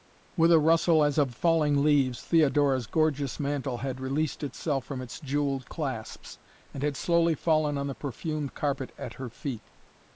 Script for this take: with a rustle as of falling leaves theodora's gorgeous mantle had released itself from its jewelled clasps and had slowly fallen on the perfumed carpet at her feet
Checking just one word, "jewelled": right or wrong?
right